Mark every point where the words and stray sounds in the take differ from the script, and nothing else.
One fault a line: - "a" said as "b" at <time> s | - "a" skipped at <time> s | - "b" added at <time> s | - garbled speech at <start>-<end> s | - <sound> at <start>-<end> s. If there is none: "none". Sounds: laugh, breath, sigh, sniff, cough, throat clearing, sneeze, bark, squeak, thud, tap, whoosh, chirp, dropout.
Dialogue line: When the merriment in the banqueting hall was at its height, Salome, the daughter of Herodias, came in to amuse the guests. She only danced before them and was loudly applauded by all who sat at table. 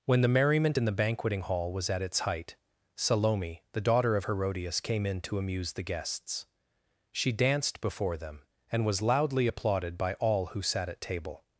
- "only" skipped at 7.3 s